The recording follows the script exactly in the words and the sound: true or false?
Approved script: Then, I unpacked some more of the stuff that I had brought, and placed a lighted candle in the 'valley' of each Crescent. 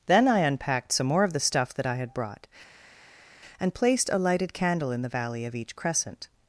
true